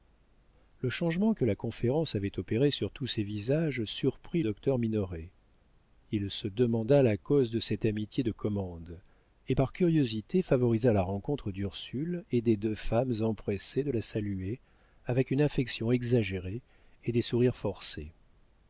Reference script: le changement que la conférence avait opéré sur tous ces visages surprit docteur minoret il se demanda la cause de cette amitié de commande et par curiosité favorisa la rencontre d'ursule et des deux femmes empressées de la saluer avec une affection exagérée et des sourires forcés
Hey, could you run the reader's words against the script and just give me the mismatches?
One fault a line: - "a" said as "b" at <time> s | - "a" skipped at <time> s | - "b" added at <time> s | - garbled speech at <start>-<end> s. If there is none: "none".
none